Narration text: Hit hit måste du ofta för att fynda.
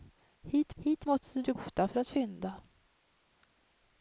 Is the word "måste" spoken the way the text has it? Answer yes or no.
yes